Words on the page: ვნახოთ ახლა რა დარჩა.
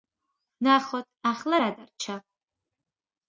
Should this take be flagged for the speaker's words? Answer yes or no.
no